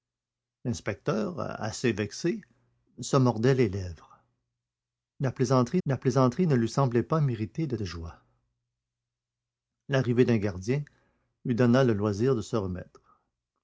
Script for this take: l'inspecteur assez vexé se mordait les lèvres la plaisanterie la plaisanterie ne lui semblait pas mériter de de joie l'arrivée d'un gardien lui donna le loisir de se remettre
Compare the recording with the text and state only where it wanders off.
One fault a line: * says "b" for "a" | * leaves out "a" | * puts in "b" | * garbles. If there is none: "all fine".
all fine